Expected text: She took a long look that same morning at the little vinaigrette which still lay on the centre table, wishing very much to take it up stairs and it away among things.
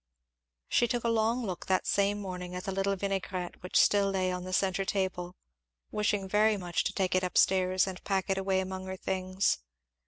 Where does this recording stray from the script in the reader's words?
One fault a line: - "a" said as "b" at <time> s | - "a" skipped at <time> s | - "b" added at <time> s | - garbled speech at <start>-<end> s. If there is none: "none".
- "pack" added at 8.0 s
- "her" added at 8.8 s